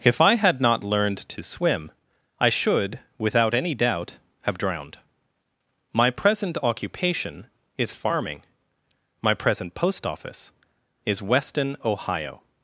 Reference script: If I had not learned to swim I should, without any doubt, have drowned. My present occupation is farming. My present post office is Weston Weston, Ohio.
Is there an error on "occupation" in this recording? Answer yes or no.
no